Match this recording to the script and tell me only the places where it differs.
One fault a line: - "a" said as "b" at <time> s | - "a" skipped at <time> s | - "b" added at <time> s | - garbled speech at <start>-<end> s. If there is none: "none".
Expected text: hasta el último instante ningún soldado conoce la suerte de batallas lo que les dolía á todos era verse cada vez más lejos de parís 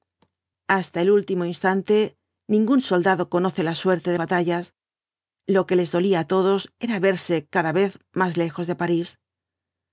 none